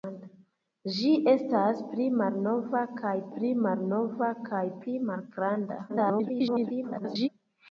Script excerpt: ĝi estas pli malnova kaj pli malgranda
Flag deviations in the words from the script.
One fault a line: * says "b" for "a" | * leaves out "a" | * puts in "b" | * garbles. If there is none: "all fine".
* puts in "malnova kaj pli"
* garbles